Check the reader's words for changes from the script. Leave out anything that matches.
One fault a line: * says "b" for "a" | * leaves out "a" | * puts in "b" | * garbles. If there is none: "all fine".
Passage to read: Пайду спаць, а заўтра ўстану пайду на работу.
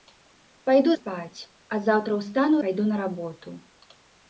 all fine